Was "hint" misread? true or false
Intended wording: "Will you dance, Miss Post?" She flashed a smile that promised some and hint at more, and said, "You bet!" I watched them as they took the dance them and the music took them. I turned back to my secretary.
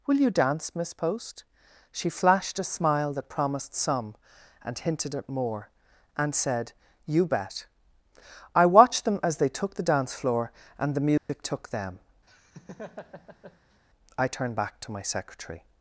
true